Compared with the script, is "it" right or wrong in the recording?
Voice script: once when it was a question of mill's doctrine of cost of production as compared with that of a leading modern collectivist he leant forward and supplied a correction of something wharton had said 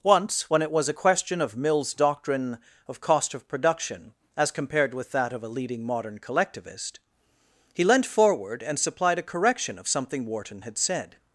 right